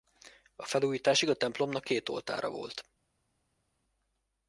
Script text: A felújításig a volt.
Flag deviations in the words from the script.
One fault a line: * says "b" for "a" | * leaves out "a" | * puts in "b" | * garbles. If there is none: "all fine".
* puts in "templomnak két oltára"